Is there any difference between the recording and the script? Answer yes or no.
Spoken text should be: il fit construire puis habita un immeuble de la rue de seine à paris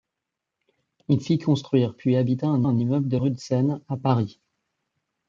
yes